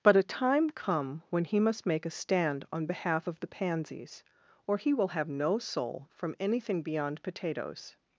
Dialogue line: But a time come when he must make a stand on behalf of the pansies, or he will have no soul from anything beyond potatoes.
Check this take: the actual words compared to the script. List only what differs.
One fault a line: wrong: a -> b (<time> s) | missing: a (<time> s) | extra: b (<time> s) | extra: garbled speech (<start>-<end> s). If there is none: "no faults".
no faults